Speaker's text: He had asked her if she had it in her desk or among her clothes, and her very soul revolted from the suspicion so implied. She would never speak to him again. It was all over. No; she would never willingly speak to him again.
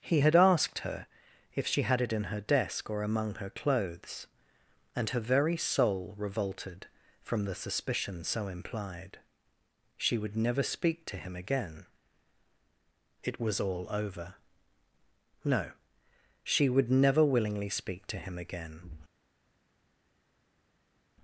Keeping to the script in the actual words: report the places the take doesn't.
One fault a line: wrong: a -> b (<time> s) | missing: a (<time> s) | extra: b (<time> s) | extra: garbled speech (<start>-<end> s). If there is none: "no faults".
no faults